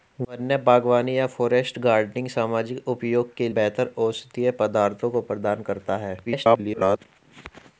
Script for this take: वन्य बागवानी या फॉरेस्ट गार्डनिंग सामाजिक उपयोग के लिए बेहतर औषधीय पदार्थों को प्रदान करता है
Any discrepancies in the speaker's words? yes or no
yes